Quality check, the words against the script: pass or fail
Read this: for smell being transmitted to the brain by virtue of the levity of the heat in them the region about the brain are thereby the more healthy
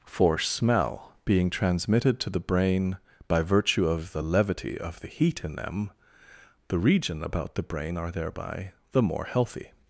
pass